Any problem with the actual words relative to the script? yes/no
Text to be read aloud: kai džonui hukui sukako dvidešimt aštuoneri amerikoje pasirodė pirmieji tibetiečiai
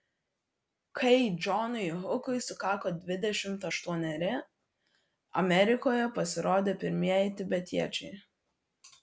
no